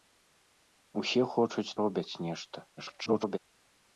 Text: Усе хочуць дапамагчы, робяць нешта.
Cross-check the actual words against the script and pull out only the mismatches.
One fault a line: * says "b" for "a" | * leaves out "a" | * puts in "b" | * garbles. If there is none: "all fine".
* leaves out "дапамагчы"
* garbles